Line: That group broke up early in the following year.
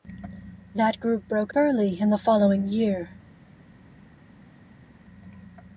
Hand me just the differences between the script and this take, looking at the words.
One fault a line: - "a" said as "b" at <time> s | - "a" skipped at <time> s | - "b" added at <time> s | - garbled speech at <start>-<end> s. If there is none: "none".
- "up" skipped at 1.5 s